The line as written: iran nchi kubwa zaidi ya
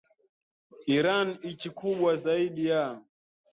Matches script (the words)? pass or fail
pass